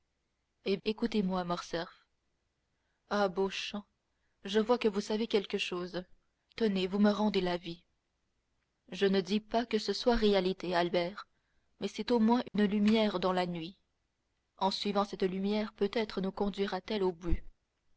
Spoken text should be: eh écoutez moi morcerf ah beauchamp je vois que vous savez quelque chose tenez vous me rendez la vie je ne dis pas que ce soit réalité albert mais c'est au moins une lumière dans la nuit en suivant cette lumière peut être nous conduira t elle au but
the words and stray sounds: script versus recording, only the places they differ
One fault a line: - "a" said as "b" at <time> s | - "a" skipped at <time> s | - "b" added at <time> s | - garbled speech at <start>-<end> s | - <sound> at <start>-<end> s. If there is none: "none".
- dropout at 12.5-12.5 s